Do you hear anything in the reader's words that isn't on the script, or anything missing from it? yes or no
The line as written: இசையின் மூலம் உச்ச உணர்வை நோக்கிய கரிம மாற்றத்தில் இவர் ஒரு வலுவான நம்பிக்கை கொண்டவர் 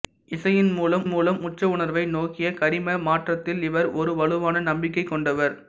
yes